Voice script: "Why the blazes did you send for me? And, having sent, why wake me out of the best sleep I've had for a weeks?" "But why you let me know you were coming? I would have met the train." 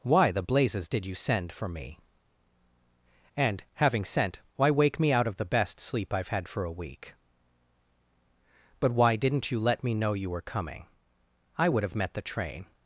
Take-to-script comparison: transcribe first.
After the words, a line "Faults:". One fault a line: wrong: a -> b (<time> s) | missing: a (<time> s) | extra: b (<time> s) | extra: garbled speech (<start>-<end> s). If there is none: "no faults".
"Why the blazes did you send for me? And, having sent, why wake me out of the best sleep I've had for a week?" "But why didn't you let me know you were coming? I would have met the train."
Faults:
wrong: weeks -> week (6.7 s)
extra: didn't (9.2 s)